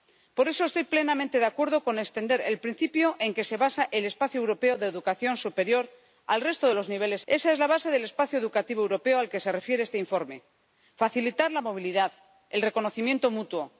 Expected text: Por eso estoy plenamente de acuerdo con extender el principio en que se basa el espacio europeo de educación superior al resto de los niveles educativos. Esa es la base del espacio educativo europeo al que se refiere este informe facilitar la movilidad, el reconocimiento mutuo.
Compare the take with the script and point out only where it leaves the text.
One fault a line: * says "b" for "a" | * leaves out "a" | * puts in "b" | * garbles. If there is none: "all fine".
* leaves out "educativos"